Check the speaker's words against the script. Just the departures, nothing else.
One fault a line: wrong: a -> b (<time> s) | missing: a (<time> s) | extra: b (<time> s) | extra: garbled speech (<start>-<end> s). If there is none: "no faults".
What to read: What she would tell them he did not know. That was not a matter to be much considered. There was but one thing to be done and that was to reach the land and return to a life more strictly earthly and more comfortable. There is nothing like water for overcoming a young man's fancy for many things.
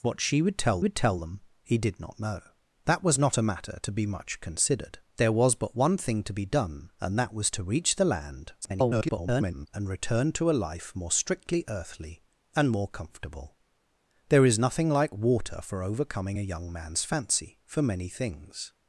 extra: would tell (0.8 s)
extra: garbled speech (8.6-9.7 s)